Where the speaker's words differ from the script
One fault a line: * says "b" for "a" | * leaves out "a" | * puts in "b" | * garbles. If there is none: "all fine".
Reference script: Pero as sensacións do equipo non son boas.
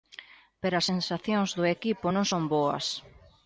all fine